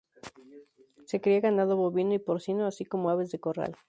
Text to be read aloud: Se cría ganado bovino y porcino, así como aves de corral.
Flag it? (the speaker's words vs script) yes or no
no